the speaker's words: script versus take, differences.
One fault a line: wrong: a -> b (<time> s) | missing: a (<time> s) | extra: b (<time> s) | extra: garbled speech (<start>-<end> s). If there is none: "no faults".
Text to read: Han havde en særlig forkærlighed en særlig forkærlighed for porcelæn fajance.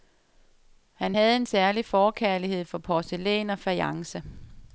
missing: en særlig forkærlighed (2.6 s)
extra: og (3.5 s)